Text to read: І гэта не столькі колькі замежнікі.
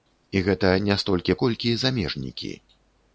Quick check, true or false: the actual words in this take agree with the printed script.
true